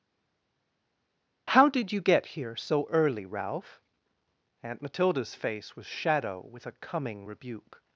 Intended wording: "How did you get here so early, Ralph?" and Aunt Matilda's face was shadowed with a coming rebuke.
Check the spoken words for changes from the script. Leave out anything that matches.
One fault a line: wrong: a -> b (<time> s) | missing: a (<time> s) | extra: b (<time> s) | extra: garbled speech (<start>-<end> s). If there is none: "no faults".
missing: and (3.8 s)
wrong: shadowed -> shadow (5.9 s)